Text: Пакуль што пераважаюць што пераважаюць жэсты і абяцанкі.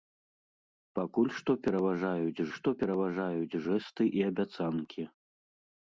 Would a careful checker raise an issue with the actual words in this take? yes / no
no